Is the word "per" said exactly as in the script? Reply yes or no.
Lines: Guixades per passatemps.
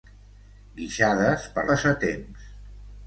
yes